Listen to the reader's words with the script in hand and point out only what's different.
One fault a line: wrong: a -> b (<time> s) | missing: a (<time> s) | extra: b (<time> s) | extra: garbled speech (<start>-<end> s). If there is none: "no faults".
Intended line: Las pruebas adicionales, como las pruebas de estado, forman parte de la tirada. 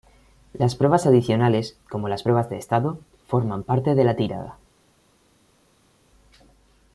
no faults